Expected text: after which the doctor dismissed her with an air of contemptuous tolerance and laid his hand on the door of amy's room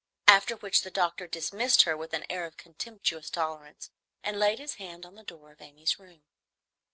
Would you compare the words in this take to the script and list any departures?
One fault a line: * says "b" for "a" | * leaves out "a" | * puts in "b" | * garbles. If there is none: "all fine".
all fine